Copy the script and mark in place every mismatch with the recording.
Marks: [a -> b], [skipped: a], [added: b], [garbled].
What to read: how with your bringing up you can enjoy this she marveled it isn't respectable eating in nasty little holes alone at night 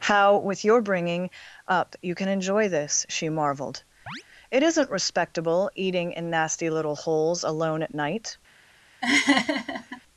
how with your bringing up you can enjoy this she marveled it isn't respectable eating in nasty little holes alone at night